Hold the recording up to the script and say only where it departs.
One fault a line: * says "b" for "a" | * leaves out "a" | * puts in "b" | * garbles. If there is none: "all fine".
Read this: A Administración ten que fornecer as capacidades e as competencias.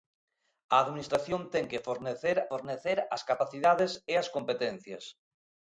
* puts in "fornecer"